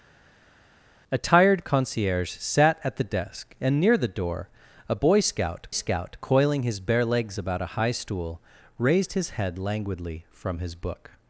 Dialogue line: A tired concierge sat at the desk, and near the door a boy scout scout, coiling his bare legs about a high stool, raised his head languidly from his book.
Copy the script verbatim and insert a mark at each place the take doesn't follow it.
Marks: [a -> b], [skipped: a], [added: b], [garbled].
A tired concierge sat at the desk, and near the door a boy scout scout, coiling his bare legs about a high stool, raised his head languidly from his book.